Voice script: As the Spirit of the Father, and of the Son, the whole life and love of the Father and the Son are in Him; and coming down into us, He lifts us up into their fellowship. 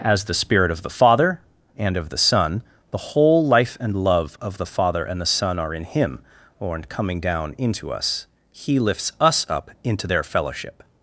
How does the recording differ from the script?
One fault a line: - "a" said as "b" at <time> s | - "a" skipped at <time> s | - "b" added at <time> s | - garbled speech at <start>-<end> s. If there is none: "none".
- "and" said as "or in" at 6.6 s